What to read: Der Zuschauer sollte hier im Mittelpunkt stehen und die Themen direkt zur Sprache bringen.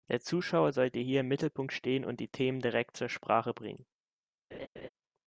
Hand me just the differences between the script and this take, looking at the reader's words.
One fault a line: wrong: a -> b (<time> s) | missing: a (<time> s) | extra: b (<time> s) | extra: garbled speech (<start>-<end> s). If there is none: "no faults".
no faults